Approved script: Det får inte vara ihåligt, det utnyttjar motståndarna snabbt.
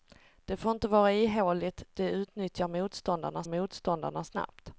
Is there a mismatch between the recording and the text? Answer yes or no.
yes